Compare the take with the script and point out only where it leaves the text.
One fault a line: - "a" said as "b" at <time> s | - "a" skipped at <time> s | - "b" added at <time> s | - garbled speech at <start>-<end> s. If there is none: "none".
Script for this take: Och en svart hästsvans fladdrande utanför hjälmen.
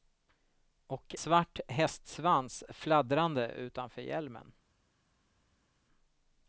- "en" skipped at 1.1 s